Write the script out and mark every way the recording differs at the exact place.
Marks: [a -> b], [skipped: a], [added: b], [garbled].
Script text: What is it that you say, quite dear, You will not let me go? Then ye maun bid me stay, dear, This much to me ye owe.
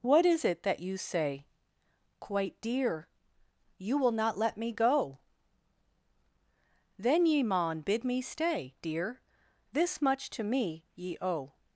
What is it that you say, quite dear, You will not let me go? Then ye maun bid me stay, dear, This much to me ye owe.